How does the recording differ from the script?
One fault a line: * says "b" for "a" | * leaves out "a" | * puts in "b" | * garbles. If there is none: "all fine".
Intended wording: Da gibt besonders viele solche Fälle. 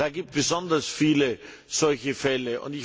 all fine